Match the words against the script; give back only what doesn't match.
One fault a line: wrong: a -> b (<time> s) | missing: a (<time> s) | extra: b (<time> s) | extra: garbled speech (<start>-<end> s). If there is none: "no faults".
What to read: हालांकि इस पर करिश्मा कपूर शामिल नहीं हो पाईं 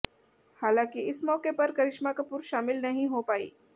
extra: मौके (1.2 s)